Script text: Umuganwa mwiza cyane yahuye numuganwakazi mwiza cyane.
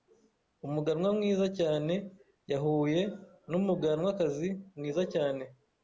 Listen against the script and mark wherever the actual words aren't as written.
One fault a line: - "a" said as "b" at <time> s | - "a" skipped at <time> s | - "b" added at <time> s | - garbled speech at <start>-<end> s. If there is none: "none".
none